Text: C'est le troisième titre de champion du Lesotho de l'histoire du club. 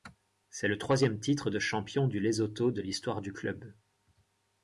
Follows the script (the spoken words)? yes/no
yes